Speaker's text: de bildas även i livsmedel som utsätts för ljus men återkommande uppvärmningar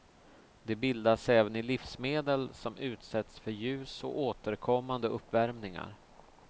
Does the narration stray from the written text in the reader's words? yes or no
yes